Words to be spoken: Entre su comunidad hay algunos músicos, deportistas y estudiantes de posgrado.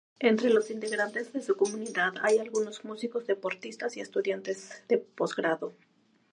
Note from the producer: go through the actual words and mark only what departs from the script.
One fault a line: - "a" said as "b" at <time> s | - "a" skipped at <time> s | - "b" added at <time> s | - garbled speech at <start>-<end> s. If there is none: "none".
- "los integrantes de" added at 0.5 s